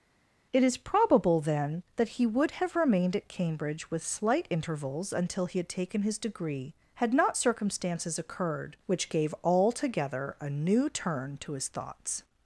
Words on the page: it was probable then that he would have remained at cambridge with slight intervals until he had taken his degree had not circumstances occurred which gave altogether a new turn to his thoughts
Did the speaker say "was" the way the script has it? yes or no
no